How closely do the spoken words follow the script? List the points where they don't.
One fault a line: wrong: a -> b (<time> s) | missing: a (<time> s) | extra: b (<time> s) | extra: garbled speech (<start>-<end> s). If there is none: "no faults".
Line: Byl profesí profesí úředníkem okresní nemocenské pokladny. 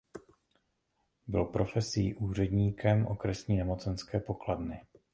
missing: profesí (2.1 s)